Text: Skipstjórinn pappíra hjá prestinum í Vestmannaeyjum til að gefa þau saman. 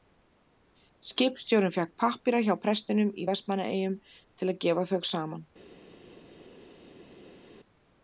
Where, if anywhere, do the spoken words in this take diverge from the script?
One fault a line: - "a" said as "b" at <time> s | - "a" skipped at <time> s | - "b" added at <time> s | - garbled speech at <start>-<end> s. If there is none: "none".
- "fékk" added at 1.8 s